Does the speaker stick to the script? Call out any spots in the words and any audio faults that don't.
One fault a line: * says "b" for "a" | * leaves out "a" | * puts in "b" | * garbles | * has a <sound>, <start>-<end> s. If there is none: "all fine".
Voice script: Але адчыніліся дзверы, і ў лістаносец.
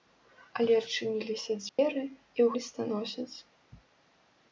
* has a dropout, 1.7-1.8 s